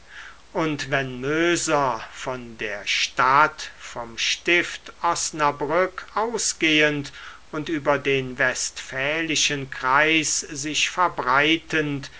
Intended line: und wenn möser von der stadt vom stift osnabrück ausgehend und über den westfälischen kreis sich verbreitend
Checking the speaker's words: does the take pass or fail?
pass